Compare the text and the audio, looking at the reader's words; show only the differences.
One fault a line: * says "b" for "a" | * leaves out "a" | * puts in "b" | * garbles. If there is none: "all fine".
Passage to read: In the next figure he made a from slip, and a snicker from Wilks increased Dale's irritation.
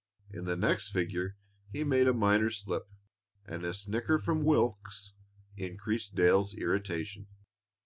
* says "minor" for "from"